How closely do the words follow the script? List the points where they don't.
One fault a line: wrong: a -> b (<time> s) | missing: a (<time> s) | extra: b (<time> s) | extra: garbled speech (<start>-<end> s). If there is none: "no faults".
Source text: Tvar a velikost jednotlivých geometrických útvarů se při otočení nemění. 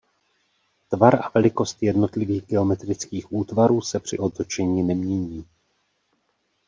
no faults